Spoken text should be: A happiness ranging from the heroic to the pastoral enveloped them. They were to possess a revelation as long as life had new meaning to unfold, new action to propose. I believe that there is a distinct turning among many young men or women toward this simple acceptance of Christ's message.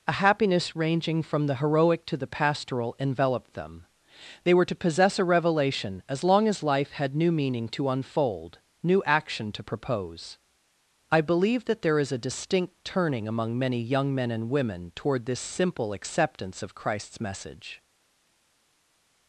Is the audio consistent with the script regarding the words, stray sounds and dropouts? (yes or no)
no